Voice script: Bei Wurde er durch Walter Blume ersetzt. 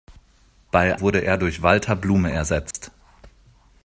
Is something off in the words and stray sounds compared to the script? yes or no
yes